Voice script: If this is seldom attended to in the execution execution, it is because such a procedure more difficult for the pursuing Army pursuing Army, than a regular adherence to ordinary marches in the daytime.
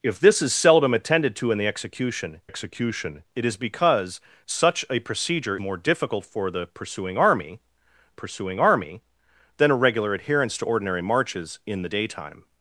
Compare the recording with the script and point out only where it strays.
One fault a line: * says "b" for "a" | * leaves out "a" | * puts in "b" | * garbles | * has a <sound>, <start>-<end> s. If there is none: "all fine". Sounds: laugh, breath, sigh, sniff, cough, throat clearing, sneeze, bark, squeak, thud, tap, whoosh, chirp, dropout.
all fine